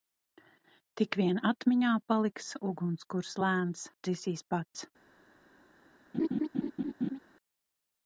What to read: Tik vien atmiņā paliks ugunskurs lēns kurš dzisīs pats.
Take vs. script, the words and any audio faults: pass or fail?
fail